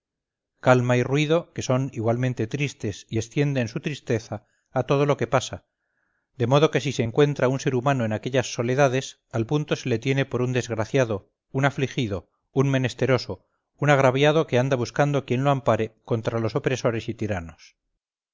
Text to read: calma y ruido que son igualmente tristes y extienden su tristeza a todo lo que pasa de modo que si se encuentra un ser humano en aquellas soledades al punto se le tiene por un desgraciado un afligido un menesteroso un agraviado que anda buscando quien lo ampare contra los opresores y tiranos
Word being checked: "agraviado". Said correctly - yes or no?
yes